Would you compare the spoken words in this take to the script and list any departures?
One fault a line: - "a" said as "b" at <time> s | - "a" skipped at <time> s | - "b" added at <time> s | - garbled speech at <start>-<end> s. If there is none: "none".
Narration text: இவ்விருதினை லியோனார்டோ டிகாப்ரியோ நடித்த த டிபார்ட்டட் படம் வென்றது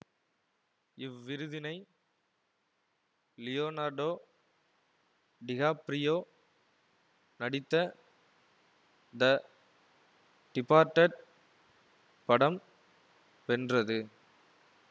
none